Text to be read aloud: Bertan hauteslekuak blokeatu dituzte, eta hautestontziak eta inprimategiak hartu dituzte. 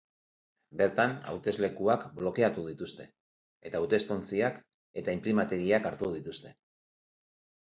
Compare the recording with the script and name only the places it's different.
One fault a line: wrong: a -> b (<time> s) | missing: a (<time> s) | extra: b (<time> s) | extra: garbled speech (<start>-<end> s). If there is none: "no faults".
no faults